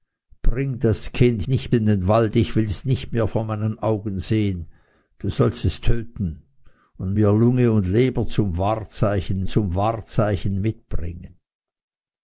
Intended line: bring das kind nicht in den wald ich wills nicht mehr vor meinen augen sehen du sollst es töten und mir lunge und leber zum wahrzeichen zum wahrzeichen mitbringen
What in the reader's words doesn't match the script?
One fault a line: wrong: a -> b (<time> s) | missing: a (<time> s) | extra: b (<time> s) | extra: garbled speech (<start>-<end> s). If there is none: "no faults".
no faults